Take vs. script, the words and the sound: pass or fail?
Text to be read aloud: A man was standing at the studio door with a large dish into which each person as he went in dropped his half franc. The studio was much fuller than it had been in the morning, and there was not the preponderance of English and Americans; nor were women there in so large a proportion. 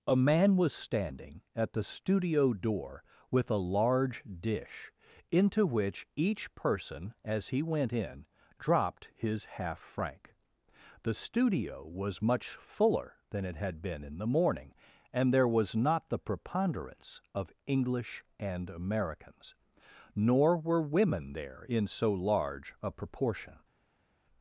pass